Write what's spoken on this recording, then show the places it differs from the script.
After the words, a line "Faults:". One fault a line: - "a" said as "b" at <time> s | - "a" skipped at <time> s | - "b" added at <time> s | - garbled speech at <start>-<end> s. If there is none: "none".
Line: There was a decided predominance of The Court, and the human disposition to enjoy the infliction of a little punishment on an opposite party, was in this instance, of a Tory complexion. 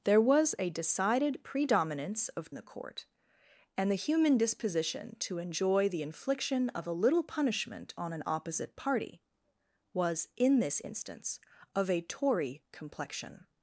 There was a decided predominance of The Court, and the human disposition to enjoy the infliction of a little punishment on an opposite party, was in this instance, of a Tory complexion.
Faults:
none